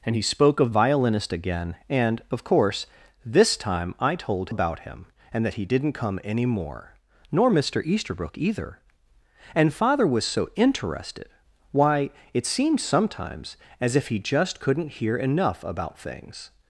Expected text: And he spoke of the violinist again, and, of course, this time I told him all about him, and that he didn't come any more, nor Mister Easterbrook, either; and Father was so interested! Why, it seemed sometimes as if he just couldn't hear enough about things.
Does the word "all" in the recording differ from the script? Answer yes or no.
yes